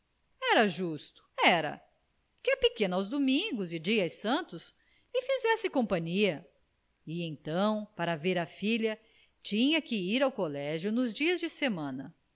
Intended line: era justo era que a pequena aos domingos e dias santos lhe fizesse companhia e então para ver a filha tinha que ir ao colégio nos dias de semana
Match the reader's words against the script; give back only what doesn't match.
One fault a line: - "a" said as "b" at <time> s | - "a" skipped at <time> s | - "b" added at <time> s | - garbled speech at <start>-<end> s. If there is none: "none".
none